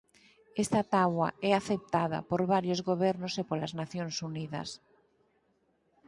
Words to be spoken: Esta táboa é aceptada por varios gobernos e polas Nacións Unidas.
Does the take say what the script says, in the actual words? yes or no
yes